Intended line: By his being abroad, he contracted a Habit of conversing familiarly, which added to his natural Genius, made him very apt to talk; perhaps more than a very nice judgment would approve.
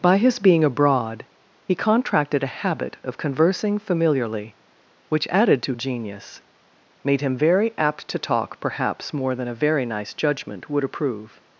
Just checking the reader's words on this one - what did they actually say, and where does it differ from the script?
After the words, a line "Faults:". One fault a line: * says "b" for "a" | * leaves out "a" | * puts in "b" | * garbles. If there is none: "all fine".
By his being abroad, he contracted a Habit of conversing familiarly, which added to Genius, made him very apt to talk; perhaps more than a very nice judgment would approve.
Faults:
* leaves out "his natural"